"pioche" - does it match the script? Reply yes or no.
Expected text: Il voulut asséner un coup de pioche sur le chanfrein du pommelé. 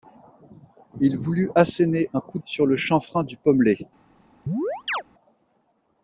no